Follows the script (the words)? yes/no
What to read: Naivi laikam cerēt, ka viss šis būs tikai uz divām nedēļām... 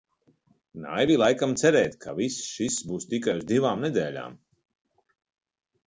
yes